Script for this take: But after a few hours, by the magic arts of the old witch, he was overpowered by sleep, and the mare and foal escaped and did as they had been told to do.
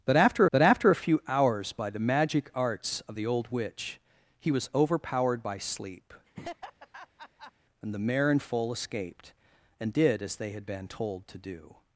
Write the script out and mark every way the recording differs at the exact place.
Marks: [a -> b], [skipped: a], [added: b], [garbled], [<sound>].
But after [added: but after] a few hours, by the magic arts of the old witch, he was overpowered by sleep, [laugh] and the mare and foal escaped and did as they had been told to do.